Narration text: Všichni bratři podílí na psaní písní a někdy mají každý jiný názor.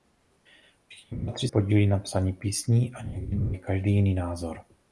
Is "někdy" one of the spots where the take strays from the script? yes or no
no